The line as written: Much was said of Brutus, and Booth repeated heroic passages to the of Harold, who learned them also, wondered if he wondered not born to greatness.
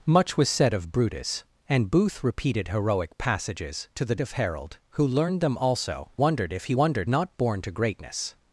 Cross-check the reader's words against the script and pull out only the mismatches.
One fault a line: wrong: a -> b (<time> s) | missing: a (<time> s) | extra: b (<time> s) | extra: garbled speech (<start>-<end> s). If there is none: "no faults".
no faults